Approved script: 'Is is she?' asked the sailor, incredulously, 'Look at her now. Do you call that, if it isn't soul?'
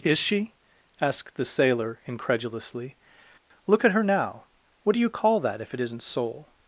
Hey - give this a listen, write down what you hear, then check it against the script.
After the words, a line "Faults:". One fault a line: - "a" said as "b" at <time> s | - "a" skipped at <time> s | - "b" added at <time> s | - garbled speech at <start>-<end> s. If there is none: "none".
'Is she?' asked the sailor, incredulously, 'Look at her now. What do you call that, if it isn't soul?'
Faults:
- "is" skipped at 0.2 s
- "What" added at 4.8 s